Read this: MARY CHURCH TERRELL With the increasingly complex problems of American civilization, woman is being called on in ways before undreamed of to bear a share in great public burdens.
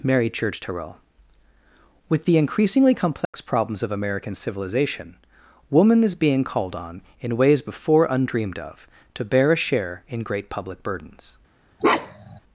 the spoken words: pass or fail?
pass